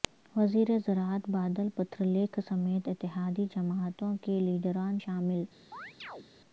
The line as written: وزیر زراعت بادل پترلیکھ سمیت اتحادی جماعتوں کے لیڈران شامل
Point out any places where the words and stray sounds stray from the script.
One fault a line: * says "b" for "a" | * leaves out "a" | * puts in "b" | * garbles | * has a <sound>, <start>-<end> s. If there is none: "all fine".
* has a chirp, 5.7-6.3 s